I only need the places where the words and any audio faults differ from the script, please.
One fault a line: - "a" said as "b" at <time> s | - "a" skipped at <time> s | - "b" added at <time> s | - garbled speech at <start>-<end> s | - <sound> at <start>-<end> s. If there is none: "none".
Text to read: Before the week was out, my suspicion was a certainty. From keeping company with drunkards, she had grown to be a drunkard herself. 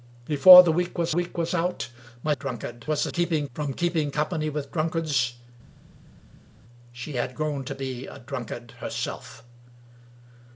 - "week was" added at 1.1 s
- "suspicion" said as "drunkard" at 2.3 s
- "certainty" said as "keeping" at 3.1 s